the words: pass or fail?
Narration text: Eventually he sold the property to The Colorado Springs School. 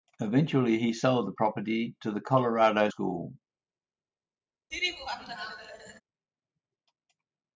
fail